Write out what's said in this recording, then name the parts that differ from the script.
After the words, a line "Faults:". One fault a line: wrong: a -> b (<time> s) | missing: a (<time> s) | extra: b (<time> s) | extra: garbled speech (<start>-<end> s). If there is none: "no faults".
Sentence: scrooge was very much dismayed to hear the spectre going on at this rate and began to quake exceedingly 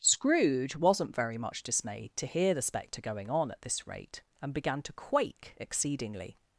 scrooge wasn't very much dismayed to hear the spectre going on at this rate and began to quake exceedingly
Faults:
wrong: was -> wasn't (0.8 s)